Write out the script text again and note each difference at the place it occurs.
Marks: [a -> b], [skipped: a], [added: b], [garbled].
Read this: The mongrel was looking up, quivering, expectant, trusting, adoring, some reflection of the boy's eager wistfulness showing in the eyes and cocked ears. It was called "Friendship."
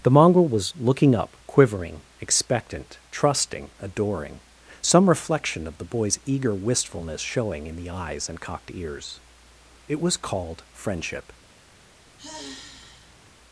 The mongrel was looking up, quivering, expectant, trusting, adoring, some reflection of the boy's eager wistfulness showing in the eyes and cocked ears. It was called "Friendship."